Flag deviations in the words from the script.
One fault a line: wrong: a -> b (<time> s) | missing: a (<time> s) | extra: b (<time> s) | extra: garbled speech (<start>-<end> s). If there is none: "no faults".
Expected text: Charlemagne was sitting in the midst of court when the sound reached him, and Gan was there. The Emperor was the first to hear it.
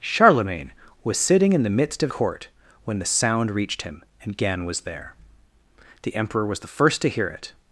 no faults